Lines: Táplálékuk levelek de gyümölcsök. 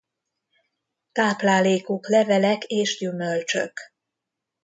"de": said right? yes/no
no